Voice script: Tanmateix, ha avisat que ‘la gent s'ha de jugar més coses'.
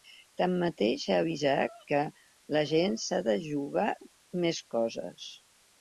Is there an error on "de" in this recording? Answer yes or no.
no